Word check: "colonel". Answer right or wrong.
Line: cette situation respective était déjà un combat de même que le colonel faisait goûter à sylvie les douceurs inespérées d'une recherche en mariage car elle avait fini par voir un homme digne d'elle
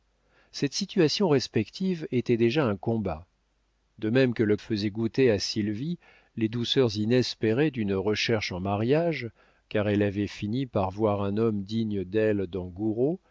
wrong